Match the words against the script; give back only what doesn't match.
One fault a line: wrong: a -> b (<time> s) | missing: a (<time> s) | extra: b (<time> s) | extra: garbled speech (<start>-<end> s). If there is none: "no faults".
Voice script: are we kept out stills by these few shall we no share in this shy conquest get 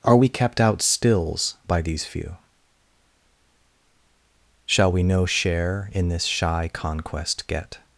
no faults